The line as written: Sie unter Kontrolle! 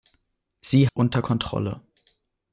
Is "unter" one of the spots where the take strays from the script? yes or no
no